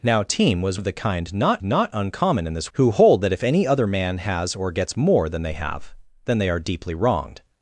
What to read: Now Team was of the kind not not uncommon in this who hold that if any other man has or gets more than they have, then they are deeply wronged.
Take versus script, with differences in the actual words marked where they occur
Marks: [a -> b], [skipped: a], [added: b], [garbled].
Now Team was of the kind not not uncommon in this who hold that if any other man has or gets more than they have, then they are deeply wronged.